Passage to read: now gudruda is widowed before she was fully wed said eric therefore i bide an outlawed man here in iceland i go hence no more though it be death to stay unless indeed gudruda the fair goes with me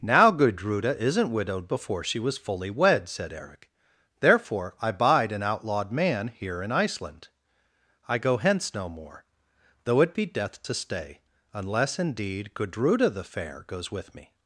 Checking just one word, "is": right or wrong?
wrong